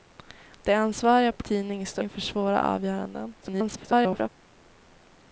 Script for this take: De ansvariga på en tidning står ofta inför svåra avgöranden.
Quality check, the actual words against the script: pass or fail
fail